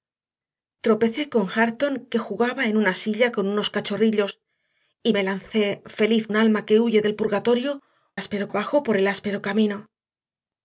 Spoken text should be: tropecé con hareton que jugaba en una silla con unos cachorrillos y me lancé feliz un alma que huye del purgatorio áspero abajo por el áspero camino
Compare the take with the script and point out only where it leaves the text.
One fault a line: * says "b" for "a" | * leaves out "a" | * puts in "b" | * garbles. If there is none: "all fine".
all fine